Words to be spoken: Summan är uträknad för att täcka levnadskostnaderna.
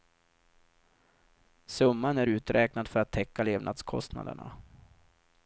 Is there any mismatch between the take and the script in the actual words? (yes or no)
no